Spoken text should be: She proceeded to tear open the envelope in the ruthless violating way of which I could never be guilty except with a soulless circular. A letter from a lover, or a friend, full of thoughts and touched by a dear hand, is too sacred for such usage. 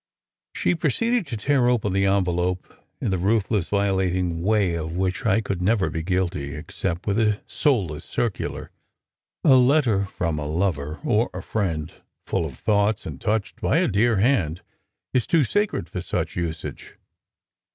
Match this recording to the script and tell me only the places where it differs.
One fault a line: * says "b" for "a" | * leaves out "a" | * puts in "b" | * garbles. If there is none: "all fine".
all fine